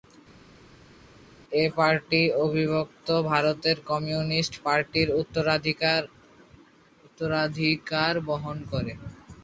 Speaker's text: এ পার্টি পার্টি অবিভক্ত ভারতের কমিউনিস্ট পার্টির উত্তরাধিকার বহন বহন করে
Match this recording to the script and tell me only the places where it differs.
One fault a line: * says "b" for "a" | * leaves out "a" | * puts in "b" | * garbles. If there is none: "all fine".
* leaves out "পার্টি"
* leaves out "বহন"